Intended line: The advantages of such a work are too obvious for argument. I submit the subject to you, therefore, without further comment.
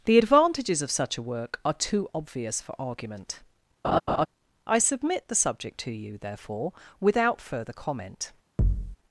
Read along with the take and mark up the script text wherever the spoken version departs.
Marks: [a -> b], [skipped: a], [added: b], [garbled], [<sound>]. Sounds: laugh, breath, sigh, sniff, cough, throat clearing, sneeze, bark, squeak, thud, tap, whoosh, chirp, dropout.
The advantages of such a work are too obvious for argument. [laugh] I submit the subject to you, therefore, without further comment. [thud]